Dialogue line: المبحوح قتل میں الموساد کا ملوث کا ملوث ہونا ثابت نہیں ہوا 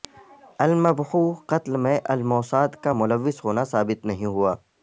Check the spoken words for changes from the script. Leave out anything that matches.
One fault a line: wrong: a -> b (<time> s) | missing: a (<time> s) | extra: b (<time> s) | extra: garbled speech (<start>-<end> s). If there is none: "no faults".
missing: کا ملوث (3.4 s)